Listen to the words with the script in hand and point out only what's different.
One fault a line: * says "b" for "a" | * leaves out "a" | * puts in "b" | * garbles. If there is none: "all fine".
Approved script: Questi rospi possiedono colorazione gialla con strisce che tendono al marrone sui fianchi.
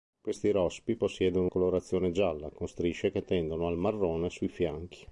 all fine